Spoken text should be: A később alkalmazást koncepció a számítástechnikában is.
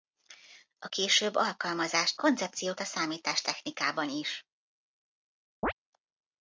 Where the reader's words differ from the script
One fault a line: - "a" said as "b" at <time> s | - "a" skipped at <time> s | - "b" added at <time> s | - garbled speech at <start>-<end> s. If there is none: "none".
none